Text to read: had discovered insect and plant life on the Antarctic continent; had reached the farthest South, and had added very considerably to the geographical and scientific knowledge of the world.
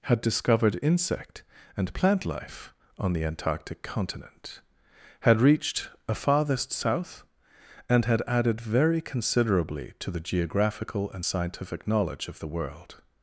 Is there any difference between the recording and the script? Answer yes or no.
yes